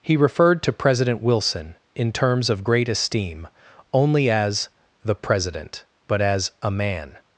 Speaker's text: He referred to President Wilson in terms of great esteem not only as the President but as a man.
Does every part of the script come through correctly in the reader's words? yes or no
no